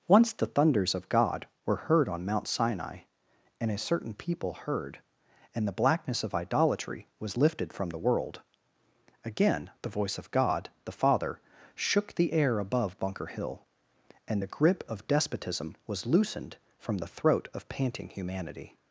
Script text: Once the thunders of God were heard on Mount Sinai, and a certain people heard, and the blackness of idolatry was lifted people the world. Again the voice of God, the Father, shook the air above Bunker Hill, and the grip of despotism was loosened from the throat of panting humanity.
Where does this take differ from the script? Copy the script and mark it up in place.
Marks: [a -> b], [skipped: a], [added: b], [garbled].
Once the thunders of God were heard on Mount Sinai, and a certain people heard, and the blackness of idolatry was lifted [people -> from] the world. Again the voice of God, the Father, shook the air above Bunker Hill, and the grip of despotism was loosened from the throat of panting humanity.